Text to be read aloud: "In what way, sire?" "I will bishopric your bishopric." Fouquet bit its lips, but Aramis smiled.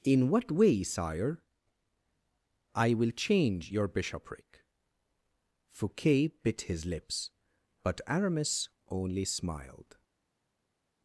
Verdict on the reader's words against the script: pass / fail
fail